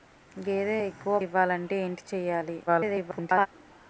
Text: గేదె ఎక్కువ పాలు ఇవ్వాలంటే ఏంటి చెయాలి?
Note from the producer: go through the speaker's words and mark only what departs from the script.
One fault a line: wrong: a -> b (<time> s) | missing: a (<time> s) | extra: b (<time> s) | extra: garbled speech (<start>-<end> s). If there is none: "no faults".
missing: పాలు (1.2 s)
extra: garbled speech (2.7-3.5 s)